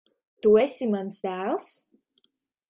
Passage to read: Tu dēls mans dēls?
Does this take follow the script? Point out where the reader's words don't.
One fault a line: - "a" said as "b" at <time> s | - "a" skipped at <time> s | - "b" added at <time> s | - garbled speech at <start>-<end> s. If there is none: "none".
- "dēls" said as "esi" at 0.6 s